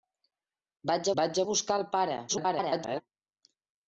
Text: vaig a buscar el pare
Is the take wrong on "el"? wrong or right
right